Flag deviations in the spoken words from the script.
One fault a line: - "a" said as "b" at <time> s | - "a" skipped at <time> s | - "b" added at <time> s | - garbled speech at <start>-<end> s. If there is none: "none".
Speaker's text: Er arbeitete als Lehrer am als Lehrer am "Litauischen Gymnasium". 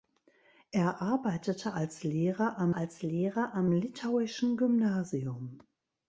none